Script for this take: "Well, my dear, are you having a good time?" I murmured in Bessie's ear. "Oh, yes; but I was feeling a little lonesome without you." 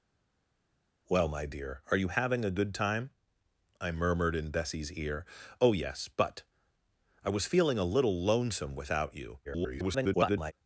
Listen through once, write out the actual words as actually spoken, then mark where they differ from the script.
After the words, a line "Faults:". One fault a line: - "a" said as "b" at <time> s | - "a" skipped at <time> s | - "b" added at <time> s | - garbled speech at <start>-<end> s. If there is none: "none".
"Well, my dear, are you having a good time?" I murmured in Bessie's ear. "Oh, yes; but I was feeling a little lonesome without you." [garbled]
Faults:
- garbled speech at 9.4-10.5 s